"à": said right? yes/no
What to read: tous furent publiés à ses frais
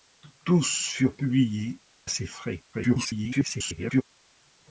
no